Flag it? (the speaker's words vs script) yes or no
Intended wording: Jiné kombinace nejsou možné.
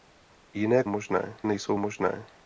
yes